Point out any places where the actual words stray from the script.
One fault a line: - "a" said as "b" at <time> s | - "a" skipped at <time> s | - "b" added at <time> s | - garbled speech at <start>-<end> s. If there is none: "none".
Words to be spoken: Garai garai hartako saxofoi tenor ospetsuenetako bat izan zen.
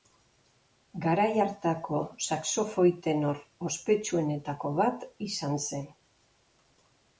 - "garai" skipped at 1.3 s